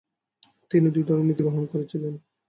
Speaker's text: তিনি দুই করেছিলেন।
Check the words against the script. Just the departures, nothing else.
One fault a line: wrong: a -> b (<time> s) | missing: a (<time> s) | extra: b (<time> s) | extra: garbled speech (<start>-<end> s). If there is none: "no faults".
extra: ধরনের নীতি গ্রহণ (1.0 s)